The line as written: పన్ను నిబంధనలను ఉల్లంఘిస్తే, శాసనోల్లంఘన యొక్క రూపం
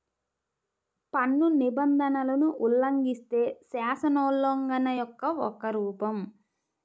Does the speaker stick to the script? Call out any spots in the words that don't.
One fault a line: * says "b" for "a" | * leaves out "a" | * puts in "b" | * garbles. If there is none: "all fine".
* puts in "ఒక"